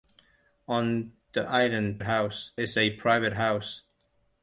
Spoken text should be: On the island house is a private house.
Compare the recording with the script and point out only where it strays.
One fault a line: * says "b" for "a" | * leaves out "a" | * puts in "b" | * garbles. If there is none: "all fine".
all fine